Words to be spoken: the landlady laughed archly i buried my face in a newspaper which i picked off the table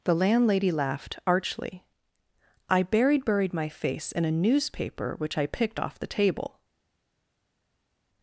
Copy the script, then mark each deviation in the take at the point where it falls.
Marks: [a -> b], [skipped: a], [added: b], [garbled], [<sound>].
the landlady laughed archly i buried [added: buried] my face in a newspaper which i picked off the table